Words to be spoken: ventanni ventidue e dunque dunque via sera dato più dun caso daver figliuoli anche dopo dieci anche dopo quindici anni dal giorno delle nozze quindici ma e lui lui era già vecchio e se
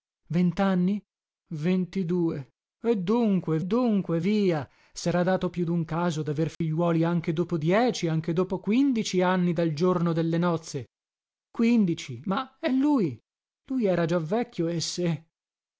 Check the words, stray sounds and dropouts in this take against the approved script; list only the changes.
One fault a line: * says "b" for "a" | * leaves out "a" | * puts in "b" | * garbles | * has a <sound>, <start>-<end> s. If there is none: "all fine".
* has a dropout, 6.5-6.6 s